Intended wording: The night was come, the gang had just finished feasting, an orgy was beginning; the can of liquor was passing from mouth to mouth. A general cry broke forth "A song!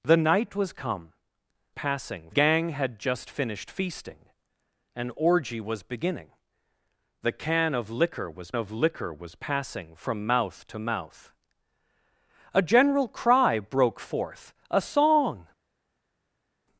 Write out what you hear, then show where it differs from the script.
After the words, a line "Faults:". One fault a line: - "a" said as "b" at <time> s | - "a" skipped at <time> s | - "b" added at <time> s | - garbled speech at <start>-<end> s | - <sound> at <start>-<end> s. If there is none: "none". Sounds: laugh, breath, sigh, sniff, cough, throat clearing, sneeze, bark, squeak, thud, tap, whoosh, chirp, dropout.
The night was come, passing gang had just finished feasting, an orgy was beginning; the can of liquor was of liquor was passing from mouth to mouth. A general cry broke forth "A song!
Faults:
- "the" said as "passing" at 1.7 s
- "of liquor was" added at 8.6 s